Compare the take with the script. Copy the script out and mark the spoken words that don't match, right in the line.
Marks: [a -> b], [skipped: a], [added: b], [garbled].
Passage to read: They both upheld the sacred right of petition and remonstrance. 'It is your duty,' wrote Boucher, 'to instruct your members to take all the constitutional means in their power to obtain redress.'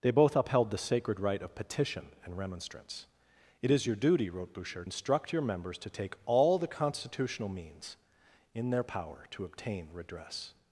They both upheld the sacred right of petition and remonstrance. 'It is your duty,' wrote Boucher, [skipped: 'to] instruct your members to take all the constitutional means in their power to obtain redress.'